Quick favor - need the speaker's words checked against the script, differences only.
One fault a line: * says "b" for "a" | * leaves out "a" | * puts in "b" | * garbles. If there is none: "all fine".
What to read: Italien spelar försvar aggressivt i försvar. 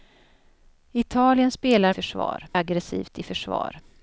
all fine